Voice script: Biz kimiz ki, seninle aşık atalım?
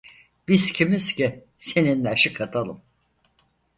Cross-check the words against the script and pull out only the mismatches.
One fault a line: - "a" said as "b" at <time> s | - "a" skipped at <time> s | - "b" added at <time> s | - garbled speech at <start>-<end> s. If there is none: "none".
none